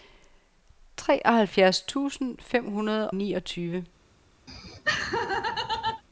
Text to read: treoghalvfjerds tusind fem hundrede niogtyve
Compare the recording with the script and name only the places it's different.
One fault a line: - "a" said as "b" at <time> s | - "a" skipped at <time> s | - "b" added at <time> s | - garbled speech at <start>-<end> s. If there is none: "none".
none